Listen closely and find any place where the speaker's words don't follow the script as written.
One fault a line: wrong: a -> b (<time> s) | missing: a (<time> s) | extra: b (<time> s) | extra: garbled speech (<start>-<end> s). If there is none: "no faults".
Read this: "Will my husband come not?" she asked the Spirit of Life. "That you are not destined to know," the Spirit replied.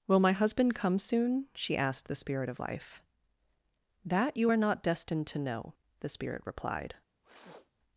wrong: not -> soon (1.0 s)